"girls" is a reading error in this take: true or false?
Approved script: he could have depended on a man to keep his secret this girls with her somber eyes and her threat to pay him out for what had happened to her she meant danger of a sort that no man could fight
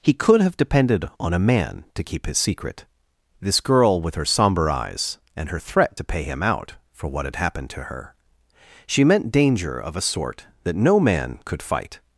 true